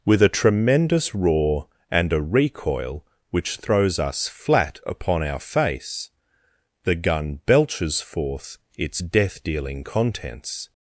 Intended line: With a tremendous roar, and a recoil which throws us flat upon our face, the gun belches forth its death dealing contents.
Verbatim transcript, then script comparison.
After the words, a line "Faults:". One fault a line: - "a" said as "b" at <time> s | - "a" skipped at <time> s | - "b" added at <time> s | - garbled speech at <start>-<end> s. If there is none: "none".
With a tremendous roar, and a recoil which throws us flat upon our face, the gun belches forth its death dealing contents.
Faults:
none